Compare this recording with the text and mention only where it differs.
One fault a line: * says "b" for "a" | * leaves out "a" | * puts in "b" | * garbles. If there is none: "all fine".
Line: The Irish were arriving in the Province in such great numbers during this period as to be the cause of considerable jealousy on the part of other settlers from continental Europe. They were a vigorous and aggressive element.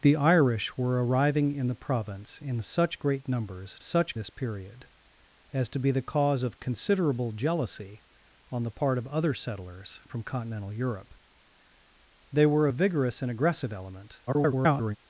* says "such" for "during"
* garbles